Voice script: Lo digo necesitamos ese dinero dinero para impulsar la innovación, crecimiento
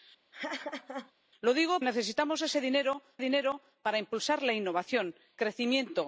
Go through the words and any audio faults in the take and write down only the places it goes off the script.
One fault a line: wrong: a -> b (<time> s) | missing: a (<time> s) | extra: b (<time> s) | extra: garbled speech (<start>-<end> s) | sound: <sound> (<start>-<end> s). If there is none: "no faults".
sound: laugh (0.3-1.1 s)